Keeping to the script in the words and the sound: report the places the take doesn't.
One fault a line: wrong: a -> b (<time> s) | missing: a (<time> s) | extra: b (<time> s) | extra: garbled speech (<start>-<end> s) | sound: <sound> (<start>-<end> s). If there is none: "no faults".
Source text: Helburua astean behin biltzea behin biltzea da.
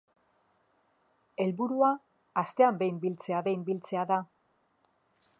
no faults